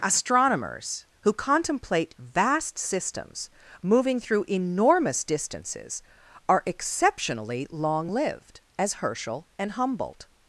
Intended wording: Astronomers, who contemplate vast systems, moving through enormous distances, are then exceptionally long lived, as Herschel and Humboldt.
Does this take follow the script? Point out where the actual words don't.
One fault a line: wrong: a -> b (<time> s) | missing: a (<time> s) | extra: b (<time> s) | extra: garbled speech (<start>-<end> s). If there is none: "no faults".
missing: then (6.6 s)